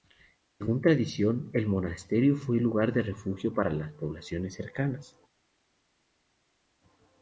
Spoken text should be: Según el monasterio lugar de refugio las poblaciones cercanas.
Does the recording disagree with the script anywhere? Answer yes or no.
yes